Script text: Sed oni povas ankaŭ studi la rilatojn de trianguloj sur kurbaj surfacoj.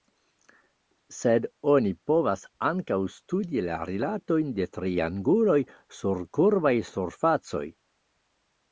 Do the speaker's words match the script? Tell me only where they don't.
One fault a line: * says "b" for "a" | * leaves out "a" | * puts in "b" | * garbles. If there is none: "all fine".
all fine